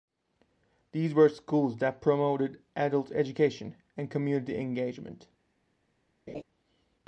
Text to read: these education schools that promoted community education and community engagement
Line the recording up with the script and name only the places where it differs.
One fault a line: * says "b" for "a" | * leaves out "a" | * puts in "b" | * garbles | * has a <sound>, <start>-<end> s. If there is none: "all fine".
* says "were" for "education"
* says "adult" for "community"
* has a laugh, 6.3-6.4 s